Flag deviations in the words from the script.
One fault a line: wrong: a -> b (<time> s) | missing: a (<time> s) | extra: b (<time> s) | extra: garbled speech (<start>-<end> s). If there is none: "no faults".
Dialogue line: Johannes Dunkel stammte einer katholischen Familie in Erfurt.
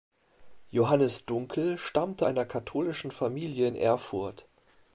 no faults